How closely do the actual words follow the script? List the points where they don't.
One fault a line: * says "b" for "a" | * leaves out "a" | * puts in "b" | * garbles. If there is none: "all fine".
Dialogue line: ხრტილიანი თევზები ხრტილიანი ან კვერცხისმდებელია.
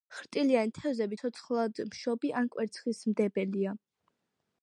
* says "ცოცხლადმშობი" for "ხრტილიანი"